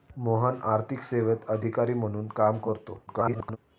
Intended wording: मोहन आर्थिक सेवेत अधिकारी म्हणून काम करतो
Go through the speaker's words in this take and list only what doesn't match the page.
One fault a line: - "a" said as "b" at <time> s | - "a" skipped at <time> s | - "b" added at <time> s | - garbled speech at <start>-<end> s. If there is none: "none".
- garbled speech at 3.1-3.6 s